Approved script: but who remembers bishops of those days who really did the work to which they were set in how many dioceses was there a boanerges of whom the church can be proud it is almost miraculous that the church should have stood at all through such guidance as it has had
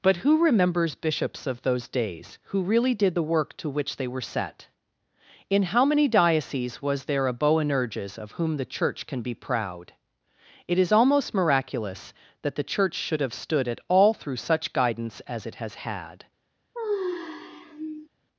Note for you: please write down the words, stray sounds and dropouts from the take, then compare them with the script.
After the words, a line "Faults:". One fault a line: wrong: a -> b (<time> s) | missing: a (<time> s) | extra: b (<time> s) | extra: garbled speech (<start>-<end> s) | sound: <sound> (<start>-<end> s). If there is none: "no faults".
but who remembers bishops of those days who really did the work to which they were set in how many dioceses was there a boanerges of whom the church can be proud it is almost miraculous that the church should have stood at all through such guidance as it has had
Faults:
sound: sigh (16.7-18.1 s)